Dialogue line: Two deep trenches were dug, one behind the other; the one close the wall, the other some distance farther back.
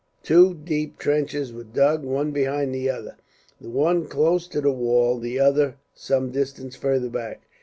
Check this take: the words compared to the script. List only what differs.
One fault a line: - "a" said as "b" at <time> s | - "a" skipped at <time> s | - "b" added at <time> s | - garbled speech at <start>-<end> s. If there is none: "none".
- "to" added at 4.5 s